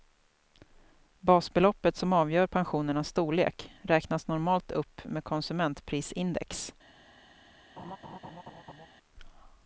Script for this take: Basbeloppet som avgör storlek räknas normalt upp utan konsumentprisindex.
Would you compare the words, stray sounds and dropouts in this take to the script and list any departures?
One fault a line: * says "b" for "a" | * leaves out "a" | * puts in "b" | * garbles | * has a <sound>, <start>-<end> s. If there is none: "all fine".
* puts in "pensionernas"
* says "med" for "utan"
* has a laugh, 7.8-8.9 s